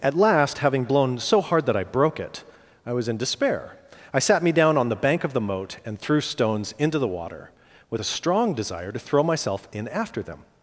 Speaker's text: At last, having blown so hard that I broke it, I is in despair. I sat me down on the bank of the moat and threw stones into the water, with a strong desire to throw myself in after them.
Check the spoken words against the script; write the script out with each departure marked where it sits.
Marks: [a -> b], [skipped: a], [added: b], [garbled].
At last, having blown so hard that I broke it, I [is -> was] in despair. I sat me down on the bank of the moat and threw stones into the water, with a strong desire to throw myself in after them.